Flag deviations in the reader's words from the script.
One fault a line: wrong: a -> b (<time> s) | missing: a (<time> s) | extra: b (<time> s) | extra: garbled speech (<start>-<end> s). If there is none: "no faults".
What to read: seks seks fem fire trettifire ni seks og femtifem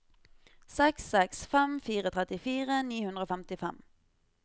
wrong: seks -> hundre (3.1 s)